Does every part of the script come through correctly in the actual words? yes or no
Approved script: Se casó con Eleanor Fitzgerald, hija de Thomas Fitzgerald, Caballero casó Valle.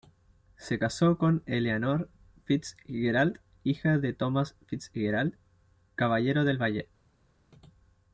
no